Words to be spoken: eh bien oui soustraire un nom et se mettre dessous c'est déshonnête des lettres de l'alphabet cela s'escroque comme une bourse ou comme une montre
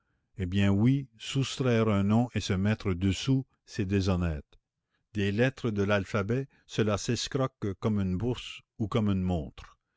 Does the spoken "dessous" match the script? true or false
true